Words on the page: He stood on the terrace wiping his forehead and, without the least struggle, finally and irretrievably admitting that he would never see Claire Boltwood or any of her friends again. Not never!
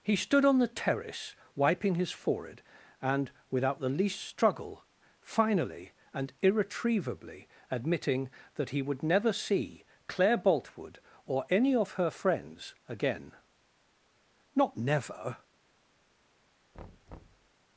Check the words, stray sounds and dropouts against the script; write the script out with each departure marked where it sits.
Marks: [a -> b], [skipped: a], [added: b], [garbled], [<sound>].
He stood on the terrace wiping his forehead and, without the least struggle, finally and irretrievably admitting that he would never see Claire Boltwood or any of her friends again. Not never! [thud]